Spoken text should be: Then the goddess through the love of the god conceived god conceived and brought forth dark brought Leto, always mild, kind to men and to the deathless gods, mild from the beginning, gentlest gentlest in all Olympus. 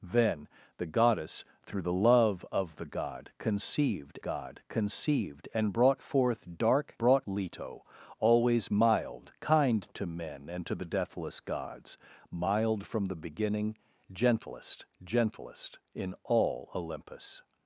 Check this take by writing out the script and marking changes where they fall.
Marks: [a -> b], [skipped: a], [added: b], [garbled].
Then the goddess through the love of the god conceived god conceived and brought forth dark brought Leto, always mild, kind to men and to the deathless gods, mild from the beginning, gentlest gentlest in all Olympus.